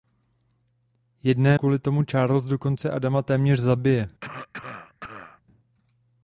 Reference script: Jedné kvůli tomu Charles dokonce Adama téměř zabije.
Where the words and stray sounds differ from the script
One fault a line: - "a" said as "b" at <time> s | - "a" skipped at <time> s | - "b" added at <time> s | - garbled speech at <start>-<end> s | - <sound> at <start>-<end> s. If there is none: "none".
- cough at 4.2-5.4 s